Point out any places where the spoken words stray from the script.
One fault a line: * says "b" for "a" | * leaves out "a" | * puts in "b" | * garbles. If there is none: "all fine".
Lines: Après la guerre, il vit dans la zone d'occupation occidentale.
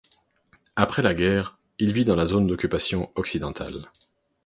all fine